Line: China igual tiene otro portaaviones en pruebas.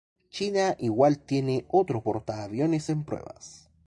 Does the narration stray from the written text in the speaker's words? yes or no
no